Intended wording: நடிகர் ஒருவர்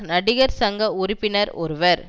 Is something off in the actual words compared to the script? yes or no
yes